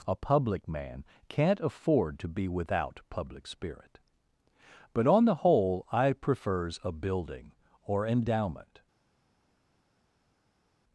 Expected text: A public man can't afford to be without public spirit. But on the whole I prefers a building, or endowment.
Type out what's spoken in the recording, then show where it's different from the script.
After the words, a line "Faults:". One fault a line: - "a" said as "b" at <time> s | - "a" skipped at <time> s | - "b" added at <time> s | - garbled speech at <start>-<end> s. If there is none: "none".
A public man can't afford to be without public spirit. But on the whole I prefers a building, or endowment.
Faults:
none